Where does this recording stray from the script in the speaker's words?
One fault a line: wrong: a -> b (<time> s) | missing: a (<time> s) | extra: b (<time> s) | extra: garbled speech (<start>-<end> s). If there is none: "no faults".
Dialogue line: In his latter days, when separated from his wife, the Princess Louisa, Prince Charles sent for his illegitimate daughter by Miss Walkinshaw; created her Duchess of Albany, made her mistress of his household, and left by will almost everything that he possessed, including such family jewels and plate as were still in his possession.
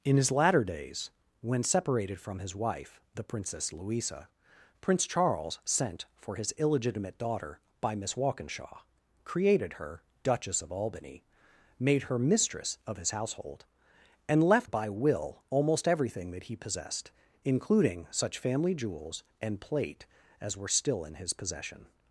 no faults